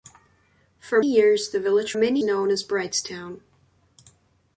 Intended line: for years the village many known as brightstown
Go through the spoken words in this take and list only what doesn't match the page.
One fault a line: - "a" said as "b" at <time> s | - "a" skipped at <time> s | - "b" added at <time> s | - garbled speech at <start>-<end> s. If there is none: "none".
none